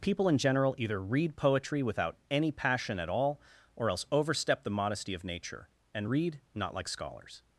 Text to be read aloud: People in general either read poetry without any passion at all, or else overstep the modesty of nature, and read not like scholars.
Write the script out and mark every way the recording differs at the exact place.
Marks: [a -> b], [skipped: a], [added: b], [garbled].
People in general either read poetry without any passion at all, or else overstep the modesty of nature, and read not like scholars.